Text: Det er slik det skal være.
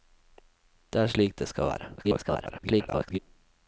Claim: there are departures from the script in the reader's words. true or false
true